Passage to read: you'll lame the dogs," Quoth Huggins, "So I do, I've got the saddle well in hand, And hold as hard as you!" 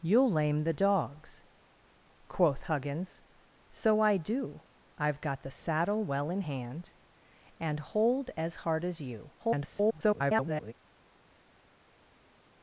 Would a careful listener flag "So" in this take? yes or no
no